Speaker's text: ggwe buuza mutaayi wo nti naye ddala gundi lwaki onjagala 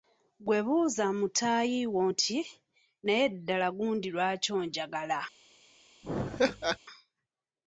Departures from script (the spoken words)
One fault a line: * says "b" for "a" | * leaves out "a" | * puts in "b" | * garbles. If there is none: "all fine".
all fine